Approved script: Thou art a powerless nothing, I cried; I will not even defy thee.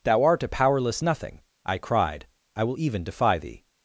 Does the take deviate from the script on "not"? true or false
true